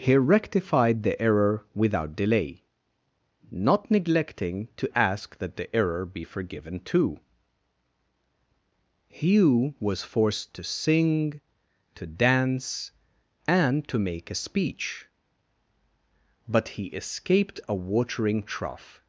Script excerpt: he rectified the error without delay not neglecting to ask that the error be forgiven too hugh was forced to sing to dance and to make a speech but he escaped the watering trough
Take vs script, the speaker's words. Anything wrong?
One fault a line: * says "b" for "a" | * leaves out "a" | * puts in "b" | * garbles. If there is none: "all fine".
* says "a" for "the"